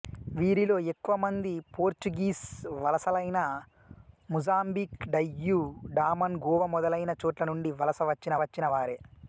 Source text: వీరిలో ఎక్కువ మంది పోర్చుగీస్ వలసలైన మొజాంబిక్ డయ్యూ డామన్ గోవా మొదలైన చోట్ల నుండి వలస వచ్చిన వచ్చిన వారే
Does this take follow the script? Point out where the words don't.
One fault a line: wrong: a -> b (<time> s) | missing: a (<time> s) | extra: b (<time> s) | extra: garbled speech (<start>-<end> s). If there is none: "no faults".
no faults